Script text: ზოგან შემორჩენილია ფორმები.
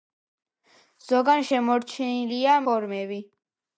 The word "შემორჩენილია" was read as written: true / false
true